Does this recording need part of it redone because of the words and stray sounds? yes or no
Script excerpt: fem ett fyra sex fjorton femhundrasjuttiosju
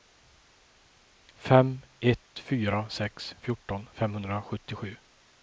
no